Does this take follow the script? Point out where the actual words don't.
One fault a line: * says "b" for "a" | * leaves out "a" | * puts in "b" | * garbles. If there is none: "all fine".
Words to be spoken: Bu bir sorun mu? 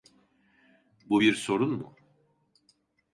all fine